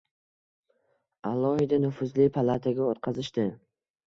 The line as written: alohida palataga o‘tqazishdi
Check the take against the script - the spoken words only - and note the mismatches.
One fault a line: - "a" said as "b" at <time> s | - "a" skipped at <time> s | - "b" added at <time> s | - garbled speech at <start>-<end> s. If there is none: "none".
- "nufuzli" added at 1.8 s